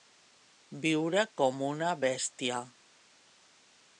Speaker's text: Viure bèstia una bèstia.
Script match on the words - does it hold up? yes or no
no